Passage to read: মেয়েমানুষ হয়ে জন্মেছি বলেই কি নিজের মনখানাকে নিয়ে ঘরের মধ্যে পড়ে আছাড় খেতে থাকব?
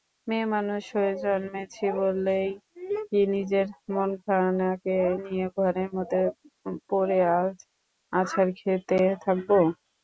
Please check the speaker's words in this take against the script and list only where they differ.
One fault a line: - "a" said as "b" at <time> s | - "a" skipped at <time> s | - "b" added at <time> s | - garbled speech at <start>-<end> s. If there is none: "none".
none